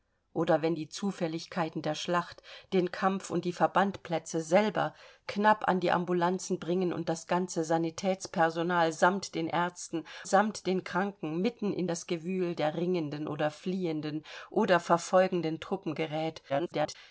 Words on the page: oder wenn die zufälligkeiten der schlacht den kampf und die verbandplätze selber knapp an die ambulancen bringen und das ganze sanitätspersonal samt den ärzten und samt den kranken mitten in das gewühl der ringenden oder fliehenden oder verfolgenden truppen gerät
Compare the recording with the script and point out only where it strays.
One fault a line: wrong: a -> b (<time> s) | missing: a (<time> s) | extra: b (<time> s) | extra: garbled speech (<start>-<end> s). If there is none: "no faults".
missing: und (10.1 s)
extra: garbled speech (16.5-17.0 s)